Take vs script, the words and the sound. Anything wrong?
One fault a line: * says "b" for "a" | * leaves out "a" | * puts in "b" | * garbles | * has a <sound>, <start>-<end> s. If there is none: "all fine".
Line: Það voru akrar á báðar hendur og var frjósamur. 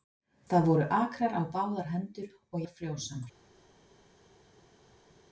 all fine